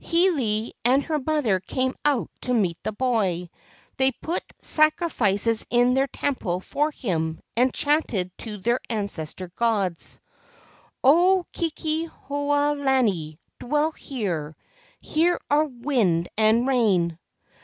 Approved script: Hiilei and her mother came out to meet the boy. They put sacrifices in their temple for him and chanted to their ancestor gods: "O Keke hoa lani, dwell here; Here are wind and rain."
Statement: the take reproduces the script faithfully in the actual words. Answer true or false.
true